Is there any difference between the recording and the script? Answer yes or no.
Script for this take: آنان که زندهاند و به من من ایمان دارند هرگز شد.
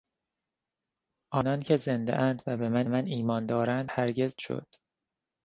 no